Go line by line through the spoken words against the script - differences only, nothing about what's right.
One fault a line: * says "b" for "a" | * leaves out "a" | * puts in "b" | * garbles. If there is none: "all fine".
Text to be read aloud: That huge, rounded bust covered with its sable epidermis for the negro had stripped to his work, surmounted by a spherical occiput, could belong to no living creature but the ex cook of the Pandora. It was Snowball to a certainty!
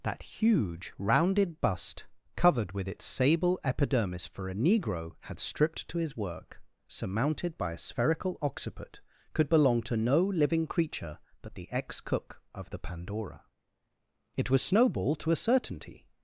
* says "a" for "the"